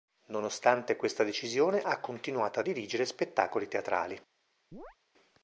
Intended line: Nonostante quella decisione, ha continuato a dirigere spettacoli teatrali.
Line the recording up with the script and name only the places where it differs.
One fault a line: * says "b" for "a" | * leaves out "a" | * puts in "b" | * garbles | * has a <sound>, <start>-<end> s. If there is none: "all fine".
* says "questa" for "quella"
* has a chirp, 4.7-5.0 s